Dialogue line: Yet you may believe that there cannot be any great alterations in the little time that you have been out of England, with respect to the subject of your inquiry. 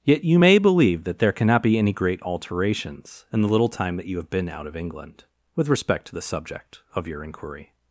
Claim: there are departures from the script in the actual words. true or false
false